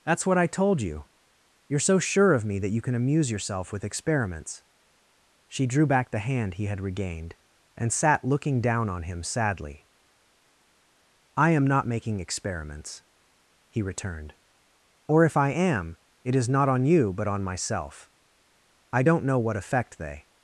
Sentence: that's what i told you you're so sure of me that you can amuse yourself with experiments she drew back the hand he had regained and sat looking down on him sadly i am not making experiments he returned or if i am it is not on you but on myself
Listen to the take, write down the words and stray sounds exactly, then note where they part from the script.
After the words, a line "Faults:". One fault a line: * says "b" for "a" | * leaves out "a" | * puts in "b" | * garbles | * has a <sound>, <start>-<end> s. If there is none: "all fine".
that's what i told you you're so sure of me that you can amuse yourself with experiments she drew back the hand he had regained and sat looking down on him sadly i am not making experiments he returned or if i am it is not on you but on myself i don't know what effect they
Faults:
* puts in "i don't know what effect they"